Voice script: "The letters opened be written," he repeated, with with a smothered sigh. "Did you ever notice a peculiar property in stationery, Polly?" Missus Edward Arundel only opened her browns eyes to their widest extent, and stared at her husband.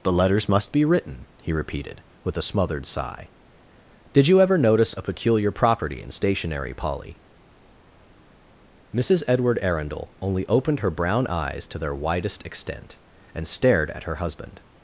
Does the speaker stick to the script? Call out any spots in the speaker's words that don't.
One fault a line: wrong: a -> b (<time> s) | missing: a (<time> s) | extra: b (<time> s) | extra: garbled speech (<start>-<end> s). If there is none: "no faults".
wrong: opened -> must (0.5 s)
missing: with (2.4 s)
wrong: browns -> brown (10.9 s)